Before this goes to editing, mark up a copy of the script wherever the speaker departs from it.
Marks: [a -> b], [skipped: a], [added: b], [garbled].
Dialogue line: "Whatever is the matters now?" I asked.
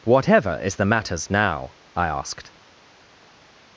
"Whatever is the matters now?" I asked.